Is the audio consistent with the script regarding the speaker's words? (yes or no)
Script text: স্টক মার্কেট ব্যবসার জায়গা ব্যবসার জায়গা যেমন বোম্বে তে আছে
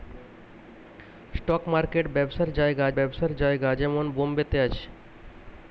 yes